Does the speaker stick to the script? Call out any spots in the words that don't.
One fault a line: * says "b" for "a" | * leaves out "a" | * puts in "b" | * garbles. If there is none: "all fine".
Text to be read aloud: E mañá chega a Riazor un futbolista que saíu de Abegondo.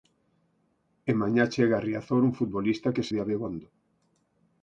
* leaves out "saíu"